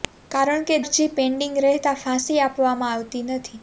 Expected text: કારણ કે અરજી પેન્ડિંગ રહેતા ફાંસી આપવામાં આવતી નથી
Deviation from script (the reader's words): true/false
false